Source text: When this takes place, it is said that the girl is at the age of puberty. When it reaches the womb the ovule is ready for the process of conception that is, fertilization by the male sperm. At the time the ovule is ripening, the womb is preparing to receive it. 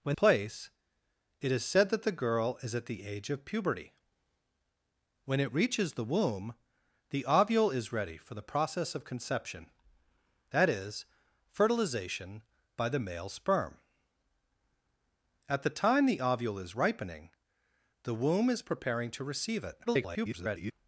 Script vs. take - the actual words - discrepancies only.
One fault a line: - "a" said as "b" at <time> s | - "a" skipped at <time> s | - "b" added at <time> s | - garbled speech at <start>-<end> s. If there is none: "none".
- "this takes" skipped at 0.2 s
- garbled speech at 19.9-20.7 s